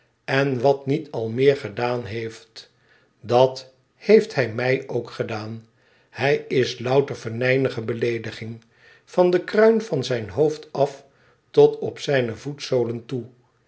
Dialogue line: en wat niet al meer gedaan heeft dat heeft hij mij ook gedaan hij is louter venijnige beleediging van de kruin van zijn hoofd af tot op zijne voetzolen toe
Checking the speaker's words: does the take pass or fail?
pass